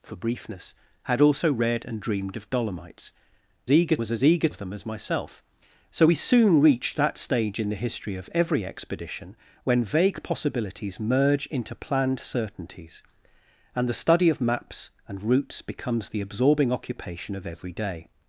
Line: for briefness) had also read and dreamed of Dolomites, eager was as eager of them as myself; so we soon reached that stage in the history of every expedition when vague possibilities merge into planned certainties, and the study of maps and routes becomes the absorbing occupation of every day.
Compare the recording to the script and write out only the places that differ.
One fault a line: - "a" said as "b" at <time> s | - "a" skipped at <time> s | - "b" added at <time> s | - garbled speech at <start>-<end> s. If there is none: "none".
none